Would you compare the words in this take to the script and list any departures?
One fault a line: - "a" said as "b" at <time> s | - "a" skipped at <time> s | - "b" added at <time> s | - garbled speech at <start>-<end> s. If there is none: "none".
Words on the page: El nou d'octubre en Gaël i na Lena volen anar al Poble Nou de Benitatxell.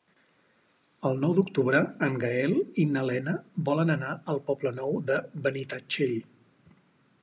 none